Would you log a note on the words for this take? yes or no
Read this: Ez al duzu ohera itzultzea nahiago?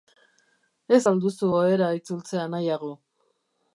no